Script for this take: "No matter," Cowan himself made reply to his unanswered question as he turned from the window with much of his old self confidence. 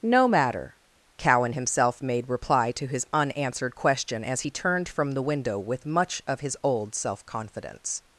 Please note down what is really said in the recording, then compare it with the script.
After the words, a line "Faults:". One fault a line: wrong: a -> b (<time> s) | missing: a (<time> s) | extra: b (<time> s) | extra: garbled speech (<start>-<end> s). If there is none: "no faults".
"No matter," Cowan himself made reply to his unanswered question as he turned from the window with much of his old self confidence.
Faults:
no faults